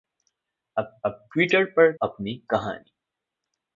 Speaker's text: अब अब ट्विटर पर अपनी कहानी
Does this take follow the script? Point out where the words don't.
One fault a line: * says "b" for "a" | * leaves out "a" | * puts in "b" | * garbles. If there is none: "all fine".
all fine